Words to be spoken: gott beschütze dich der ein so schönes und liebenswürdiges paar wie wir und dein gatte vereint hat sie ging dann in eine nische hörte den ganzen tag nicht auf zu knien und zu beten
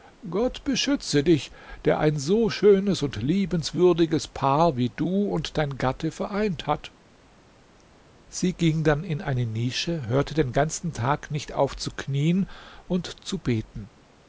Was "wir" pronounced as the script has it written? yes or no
no